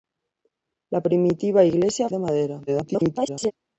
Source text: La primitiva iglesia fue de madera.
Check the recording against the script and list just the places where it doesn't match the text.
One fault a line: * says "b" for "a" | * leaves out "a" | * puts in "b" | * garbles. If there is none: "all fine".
* leaves out "fue"
* garbles